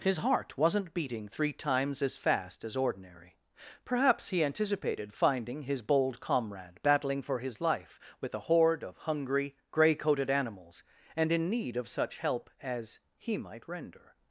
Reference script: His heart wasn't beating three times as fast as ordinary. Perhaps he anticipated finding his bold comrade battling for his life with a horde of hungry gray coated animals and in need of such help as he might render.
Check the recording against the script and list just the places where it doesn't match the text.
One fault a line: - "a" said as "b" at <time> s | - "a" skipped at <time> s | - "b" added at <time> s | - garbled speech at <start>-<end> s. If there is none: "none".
none